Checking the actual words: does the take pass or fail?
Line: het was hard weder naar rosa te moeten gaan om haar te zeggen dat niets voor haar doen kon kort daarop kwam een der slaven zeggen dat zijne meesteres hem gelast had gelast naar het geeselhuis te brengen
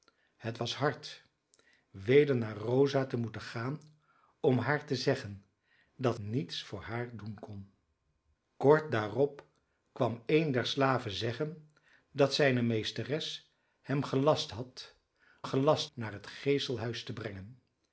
pass